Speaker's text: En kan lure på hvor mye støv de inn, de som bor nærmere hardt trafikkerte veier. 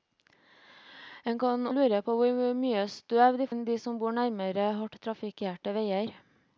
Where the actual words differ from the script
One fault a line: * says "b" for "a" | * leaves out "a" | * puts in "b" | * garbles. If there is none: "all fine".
all fine